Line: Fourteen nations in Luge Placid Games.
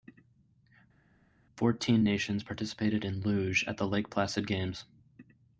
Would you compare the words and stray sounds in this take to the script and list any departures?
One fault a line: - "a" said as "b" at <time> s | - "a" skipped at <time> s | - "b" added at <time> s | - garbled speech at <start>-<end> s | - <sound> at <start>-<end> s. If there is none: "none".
- "participated" added at 2.4 s
- "at the Lake" added at 3.7 s